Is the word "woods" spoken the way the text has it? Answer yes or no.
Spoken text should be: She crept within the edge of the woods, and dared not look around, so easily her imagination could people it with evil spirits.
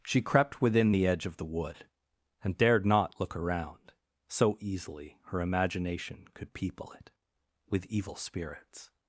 no